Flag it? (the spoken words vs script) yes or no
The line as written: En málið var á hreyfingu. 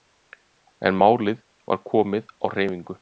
yes